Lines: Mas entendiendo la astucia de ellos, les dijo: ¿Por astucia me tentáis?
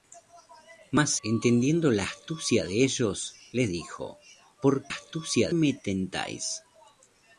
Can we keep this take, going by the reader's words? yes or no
yes